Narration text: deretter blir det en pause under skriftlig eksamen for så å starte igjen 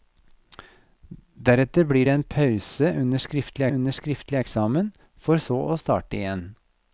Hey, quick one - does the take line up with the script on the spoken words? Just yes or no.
no